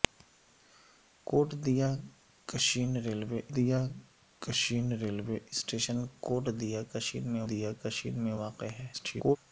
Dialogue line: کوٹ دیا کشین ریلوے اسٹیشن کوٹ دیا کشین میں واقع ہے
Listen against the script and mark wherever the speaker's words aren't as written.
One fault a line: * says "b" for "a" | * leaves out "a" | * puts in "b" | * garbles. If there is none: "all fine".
* puts in "دیا کشین ریلوے"
* puts in "دیا کشین میں"
* garbles